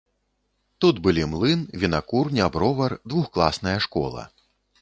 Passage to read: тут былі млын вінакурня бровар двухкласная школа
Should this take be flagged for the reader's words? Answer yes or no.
no